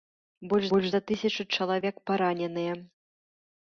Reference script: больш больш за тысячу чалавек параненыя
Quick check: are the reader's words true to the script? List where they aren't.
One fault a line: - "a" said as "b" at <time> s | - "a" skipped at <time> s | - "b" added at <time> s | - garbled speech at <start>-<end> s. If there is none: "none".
none